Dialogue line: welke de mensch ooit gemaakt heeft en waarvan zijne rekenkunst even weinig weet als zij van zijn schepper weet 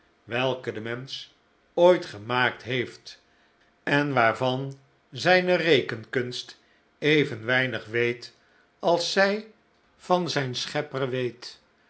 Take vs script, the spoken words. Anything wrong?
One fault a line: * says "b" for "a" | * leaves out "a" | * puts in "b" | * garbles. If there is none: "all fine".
all fine